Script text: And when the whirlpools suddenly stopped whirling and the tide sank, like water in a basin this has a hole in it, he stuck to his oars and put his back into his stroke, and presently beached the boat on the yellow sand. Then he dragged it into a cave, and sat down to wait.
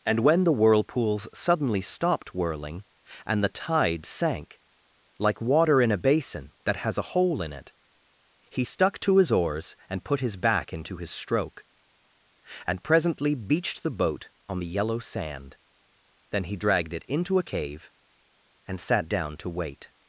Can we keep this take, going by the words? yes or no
no